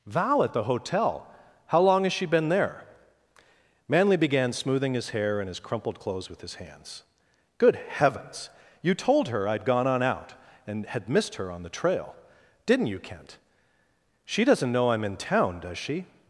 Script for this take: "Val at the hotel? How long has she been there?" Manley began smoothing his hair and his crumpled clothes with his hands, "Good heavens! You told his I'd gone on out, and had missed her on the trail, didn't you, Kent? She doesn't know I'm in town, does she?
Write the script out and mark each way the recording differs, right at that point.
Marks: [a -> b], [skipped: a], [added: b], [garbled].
"Val at the hotel? How long has she been there?" Manley began smoothing his hair and his crumpled clothes with his hands, "Good heavens! You told [his -> her] I'd gone on out, and had missed her on the trail, didn't you, Kent? She doesn't know I'm in town, does she?